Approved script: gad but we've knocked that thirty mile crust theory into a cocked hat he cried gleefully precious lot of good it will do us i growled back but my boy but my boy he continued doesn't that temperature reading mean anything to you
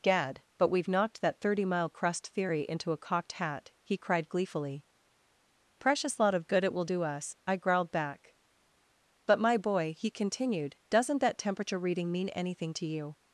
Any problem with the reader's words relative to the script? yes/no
yes